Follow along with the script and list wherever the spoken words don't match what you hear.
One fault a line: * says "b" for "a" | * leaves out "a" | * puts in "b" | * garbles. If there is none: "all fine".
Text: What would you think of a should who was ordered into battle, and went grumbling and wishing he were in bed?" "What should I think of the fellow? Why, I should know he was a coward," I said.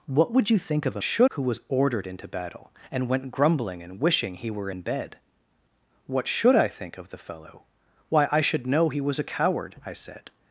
all fine